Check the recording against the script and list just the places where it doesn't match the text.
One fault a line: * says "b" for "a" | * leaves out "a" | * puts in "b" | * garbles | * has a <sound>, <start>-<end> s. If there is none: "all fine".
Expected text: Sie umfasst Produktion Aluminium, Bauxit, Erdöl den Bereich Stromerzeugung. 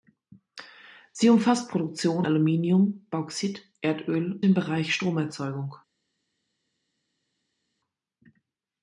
all fine